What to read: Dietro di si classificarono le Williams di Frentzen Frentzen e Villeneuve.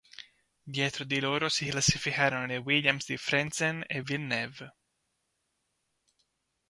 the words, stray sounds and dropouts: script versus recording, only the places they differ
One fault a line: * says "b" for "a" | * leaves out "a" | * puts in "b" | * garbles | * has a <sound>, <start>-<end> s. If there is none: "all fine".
* puts in "loro"
* leaves out "Frentzen"